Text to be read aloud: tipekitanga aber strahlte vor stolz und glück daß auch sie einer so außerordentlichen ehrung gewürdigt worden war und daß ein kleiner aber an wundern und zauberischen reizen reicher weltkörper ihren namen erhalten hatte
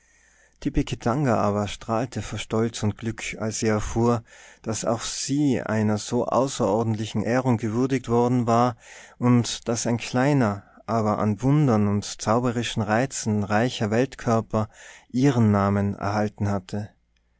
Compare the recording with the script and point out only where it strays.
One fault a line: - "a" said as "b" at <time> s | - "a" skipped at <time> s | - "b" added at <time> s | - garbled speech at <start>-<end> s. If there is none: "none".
- "als sie erfuhr" added at 3.4 s